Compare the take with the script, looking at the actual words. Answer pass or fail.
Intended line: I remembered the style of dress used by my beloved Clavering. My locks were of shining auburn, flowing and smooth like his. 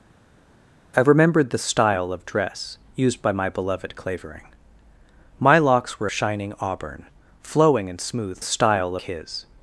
fail